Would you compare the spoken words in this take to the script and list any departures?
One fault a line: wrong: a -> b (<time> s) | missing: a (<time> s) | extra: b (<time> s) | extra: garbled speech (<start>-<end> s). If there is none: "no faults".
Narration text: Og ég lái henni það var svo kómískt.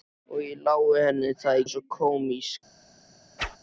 no faults